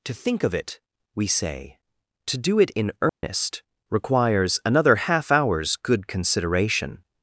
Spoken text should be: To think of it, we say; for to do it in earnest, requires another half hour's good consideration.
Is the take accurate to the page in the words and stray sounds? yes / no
no